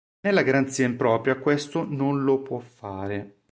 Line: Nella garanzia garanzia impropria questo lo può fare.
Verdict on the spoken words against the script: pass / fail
fail